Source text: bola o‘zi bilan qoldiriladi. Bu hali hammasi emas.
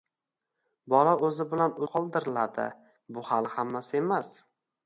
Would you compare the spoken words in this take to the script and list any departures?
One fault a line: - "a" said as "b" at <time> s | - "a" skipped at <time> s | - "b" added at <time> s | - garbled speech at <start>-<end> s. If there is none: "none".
none